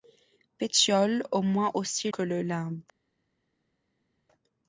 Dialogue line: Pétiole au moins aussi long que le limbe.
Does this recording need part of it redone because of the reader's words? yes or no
yes